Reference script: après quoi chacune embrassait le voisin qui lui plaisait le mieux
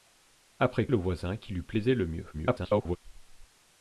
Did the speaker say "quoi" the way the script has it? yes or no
no